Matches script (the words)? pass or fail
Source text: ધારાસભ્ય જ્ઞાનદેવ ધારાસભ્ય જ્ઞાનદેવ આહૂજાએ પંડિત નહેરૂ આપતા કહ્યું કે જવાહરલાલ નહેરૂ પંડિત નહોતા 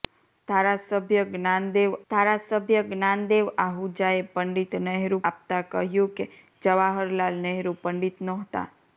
pass